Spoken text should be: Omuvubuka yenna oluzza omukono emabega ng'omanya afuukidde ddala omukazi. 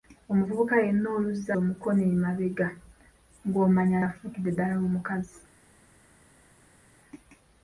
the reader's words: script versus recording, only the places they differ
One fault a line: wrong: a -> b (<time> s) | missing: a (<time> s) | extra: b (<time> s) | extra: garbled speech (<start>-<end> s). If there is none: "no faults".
no faults